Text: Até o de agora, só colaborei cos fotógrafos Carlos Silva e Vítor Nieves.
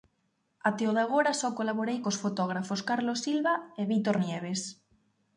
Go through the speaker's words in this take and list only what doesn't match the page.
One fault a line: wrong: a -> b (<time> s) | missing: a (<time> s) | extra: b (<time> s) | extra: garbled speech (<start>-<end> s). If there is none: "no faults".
no faults